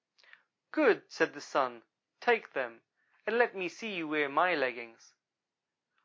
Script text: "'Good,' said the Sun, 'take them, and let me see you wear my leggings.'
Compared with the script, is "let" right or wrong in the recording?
right